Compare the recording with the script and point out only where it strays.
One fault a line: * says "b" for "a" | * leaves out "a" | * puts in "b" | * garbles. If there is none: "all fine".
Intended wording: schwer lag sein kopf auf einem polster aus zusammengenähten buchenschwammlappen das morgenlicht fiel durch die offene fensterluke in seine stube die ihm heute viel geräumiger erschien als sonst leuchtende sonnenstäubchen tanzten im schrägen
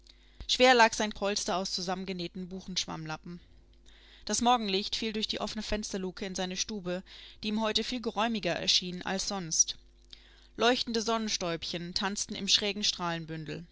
* leaves out "kopf auf einem"